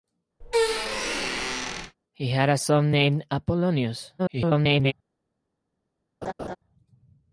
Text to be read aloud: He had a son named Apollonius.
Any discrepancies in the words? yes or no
yes